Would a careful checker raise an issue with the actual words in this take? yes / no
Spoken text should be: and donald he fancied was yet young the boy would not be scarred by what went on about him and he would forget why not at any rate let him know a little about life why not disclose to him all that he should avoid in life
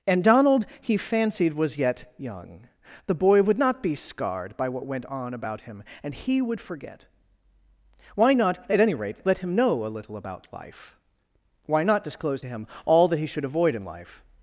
no